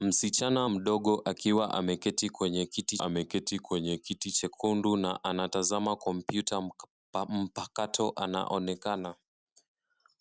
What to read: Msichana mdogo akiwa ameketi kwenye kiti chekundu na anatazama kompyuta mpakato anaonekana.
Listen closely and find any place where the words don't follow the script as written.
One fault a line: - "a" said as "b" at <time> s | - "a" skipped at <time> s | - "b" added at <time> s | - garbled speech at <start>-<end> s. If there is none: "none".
- "ameketi kwenye kiti" added at 3.0 s